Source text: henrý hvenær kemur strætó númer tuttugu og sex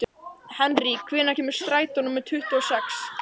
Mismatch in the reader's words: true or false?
false